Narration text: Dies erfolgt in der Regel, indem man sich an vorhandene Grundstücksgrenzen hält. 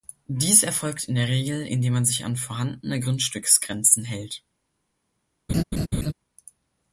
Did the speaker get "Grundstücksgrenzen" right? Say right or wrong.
right